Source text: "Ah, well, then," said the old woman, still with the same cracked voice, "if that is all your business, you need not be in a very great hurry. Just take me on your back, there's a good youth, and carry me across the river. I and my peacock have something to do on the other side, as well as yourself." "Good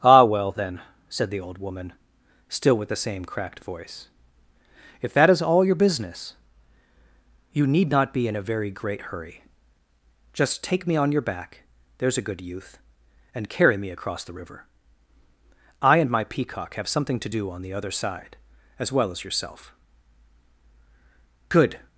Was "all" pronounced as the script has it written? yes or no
yes